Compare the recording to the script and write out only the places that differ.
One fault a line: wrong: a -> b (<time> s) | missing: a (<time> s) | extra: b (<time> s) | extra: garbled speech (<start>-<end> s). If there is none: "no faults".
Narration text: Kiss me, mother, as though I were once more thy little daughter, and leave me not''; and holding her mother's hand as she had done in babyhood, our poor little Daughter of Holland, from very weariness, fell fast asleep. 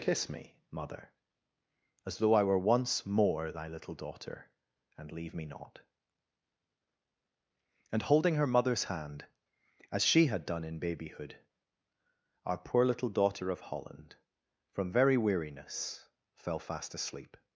no faults